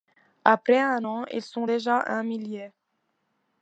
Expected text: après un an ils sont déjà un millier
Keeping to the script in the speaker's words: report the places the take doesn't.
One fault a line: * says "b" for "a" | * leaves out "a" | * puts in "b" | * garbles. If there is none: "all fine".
all fine